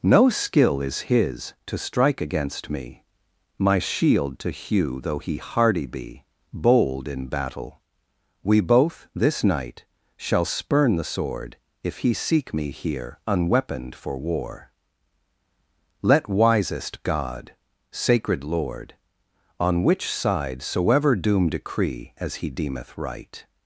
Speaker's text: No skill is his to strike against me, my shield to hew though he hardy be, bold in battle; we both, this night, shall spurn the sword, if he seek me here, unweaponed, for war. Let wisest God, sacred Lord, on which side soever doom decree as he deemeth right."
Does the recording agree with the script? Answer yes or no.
yes